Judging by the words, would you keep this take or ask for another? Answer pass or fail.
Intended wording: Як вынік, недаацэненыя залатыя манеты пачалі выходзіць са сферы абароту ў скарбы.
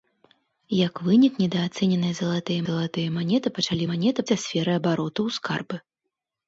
fail